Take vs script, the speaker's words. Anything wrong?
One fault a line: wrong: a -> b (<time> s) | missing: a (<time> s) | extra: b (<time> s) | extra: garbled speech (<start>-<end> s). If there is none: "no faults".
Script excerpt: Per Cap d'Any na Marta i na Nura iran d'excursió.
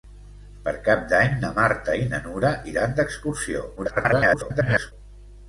extra: garbled speech (3.8-4.9 s)